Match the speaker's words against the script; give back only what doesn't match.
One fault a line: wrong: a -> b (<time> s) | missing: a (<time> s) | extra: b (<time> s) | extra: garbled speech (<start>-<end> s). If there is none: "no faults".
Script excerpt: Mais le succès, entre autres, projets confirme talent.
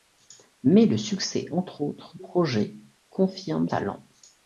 no faults